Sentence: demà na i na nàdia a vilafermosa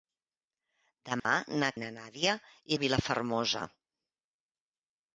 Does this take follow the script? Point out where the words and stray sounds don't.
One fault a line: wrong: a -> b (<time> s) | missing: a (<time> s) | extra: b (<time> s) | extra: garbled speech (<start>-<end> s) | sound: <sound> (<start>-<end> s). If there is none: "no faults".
sound: dropout (1.2-1.2 s)